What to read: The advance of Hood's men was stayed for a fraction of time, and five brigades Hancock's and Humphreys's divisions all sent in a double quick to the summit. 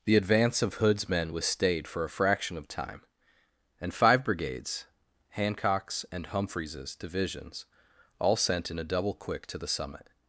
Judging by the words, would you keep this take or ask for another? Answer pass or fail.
pass